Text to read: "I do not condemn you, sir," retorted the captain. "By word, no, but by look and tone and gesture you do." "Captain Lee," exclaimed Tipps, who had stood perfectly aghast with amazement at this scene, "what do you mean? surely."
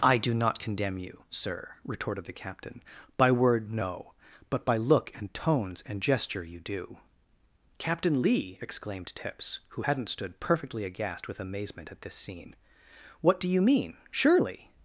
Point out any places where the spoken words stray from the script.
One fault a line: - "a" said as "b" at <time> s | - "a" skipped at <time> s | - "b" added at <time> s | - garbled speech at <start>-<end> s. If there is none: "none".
- "tone" said as "tones" at 5.3 s
- "had" said as "hadn't" at 9.8 s